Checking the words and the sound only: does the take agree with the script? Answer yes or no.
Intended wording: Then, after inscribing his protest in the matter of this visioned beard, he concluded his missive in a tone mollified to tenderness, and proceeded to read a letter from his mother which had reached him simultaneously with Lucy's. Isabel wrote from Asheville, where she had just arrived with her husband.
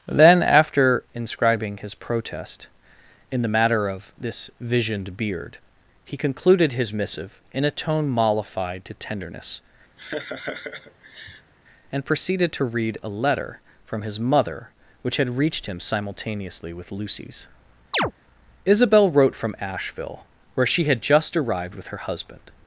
no